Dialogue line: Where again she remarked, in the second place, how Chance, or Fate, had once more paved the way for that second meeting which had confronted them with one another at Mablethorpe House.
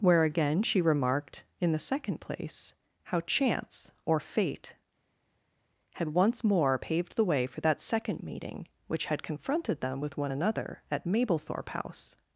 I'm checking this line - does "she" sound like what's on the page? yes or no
yes